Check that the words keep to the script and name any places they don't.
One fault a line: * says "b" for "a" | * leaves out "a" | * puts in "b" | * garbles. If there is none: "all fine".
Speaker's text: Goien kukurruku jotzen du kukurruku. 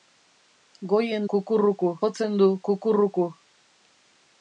all fine